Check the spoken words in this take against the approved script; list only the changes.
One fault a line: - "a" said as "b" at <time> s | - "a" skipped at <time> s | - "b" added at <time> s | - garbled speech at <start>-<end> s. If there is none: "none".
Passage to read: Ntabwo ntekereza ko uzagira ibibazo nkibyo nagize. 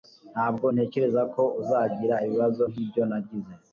none